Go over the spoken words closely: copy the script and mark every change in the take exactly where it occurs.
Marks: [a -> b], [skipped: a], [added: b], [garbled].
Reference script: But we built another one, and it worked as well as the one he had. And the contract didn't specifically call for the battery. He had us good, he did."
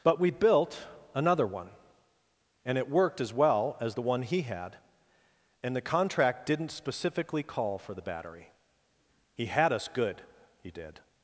But we built another one, and it worked as well as the one he had. And the contract didn't specifically call for the battery. He had us good, he did."